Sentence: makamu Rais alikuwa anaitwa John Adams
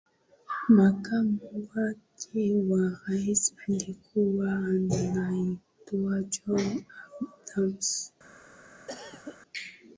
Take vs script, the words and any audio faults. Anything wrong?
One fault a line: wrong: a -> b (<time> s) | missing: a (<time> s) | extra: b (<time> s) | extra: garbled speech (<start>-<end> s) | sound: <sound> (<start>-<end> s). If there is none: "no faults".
extra: wake wa (1.8 s)
sound: cough (8.9-9.4 s)